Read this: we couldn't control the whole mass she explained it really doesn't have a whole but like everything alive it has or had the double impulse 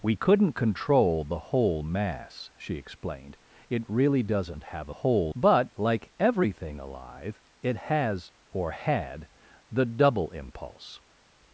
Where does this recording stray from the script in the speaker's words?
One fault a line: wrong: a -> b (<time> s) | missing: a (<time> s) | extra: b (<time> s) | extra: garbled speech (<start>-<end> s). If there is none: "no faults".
no faults